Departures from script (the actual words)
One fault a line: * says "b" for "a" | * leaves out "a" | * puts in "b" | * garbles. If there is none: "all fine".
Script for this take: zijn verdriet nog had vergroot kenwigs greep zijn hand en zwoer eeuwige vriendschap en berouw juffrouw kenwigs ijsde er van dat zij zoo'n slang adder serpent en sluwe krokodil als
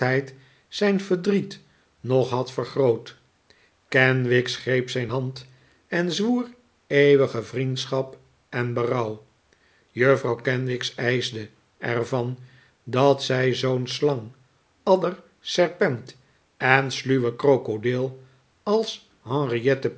all fine